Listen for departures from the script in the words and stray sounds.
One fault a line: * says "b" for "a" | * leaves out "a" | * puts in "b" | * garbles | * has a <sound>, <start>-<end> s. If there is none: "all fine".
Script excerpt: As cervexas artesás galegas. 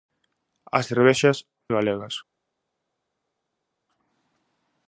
* leaves out "artesás"